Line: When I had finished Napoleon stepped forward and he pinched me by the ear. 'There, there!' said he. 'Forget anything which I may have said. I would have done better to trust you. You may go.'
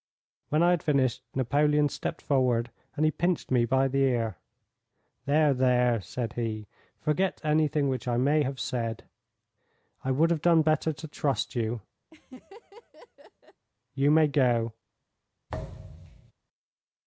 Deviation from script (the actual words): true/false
false